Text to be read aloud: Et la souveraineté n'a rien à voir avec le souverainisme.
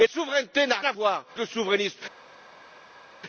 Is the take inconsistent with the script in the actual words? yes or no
yes